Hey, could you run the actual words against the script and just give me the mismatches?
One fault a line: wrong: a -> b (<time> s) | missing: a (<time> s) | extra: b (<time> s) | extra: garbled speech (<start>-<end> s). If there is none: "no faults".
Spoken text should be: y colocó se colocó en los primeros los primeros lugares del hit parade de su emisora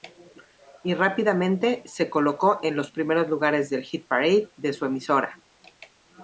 wrong: colocó -> rápidamente (0.9 s)
missing: los primeros (3.3 s)